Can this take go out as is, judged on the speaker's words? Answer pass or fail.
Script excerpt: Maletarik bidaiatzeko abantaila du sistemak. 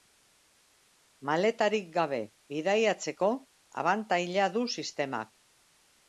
fail